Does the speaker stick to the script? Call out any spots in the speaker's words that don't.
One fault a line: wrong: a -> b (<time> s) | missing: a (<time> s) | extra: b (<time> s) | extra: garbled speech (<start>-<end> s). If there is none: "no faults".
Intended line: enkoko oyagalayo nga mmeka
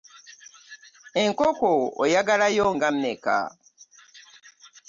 no faults